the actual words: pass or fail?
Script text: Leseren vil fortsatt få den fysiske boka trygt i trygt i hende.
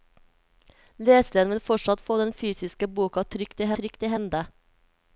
pass